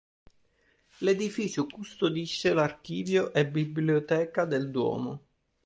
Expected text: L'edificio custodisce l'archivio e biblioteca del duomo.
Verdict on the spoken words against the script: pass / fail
pass